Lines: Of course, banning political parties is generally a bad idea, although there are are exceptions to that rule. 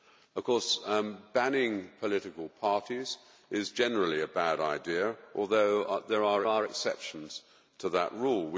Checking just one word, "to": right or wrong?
right